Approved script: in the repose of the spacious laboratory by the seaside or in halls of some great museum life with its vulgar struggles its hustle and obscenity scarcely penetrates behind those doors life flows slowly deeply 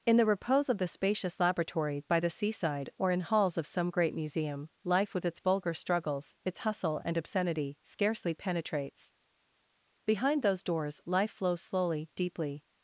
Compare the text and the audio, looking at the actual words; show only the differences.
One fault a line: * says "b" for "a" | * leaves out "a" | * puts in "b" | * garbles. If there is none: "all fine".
all fine